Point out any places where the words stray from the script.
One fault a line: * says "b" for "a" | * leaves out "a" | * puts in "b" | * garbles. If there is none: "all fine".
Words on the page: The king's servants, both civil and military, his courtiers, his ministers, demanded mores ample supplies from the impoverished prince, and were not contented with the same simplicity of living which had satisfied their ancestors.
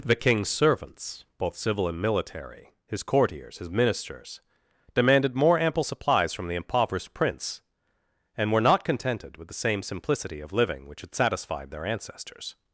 * says "more" for "mores"